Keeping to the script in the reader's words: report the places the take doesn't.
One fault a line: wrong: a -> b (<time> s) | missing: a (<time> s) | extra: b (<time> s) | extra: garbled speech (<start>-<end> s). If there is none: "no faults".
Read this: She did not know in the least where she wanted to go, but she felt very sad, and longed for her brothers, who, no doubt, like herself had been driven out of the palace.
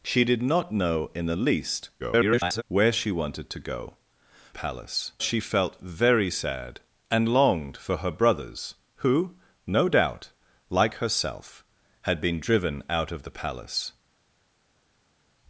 extra: garbled speech (2.0-2.6 s)
wrong: but -> palace (4.5 s)